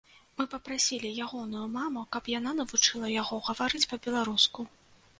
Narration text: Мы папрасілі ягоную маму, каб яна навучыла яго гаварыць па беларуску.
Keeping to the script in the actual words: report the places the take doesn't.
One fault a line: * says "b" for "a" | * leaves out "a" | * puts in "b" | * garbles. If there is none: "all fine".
all fine